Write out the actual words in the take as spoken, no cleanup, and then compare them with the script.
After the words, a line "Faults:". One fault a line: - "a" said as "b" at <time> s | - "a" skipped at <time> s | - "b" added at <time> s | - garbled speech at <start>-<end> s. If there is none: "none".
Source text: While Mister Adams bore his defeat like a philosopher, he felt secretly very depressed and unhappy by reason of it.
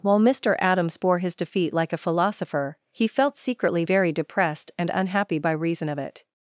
While Mister Adams bore his defeat like a philosopher, he felt secretly very depressed and unhappy by reason of it.
Faults:
none